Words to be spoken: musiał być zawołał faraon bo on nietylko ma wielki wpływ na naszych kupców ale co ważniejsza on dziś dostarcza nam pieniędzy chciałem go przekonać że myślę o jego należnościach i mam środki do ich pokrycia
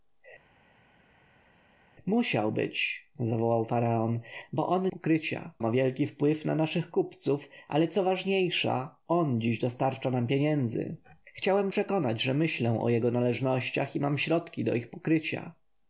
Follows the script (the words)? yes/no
no